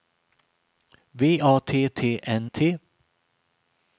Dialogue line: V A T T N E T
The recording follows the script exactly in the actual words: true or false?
false